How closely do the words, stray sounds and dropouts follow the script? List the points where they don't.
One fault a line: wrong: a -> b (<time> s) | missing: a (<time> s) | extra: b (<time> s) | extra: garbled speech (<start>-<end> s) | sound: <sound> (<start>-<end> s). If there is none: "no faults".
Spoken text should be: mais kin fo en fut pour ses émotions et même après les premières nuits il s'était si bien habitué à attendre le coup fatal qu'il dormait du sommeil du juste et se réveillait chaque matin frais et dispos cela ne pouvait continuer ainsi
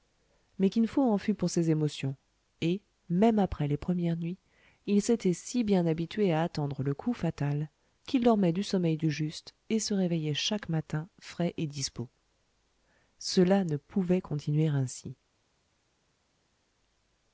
no faults